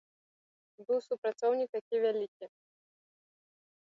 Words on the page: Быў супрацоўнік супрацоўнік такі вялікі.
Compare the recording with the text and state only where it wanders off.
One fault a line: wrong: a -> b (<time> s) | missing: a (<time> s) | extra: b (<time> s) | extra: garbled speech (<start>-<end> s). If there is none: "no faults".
missing: супрацоўнік (1.7 s)